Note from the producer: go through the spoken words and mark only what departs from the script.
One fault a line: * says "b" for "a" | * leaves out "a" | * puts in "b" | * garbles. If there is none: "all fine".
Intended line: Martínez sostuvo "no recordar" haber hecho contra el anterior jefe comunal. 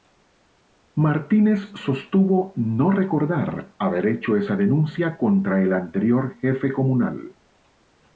* puts in "esa denuncia"